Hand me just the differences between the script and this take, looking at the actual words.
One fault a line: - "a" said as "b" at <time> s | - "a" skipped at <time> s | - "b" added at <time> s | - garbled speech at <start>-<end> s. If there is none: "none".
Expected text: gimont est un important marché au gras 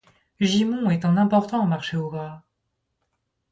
none